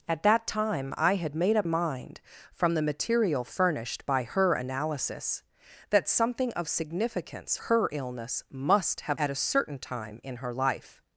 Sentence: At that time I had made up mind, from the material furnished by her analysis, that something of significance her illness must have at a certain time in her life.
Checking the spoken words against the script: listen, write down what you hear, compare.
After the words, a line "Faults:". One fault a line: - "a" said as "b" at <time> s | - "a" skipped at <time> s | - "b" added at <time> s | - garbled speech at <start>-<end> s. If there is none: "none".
At that time I had made up mind, from the material furnished by her analysis, that something of significance her illness must have at a certain time in her life.
Faults:
none